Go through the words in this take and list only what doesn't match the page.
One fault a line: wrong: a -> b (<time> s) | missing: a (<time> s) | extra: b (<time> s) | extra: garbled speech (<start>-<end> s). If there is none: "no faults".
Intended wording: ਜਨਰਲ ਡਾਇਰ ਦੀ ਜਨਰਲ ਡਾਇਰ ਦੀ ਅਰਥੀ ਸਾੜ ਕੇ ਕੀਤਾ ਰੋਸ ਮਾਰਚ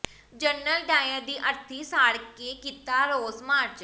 missing: ਜਨਰਲ ਡਾਇਰ ਦੀ (1.4 s)